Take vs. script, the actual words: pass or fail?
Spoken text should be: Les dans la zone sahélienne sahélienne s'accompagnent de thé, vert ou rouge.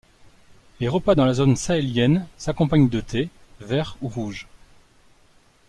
fail